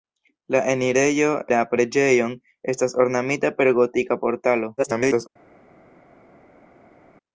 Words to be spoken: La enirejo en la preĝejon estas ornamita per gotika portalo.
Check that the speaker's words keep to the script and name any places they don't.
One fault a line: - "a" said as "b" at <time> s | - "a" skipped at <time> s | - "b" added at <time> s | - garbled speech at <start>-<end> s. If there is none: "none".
- "en" skipped at 1.3 s
- garbled speech at 4.8-5.3 s